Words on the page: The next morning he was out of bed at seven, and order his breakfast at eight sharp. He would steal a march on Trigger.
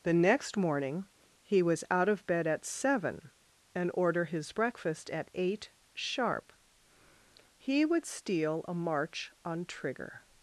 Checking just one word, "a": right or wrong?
right